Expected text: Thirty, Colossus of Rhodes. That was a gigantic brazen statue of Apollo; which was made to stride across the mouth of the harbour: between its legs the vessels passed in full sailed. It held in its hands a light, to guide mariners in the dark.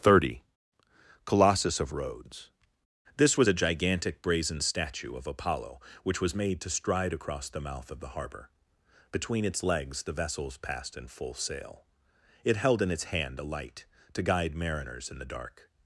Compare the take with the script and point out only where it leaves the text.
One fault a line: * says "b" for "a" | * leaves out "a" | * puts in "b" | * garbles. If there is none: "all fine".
* says "This" for "That"
* says "sail" for "sailed"
* says "hand" for "hands"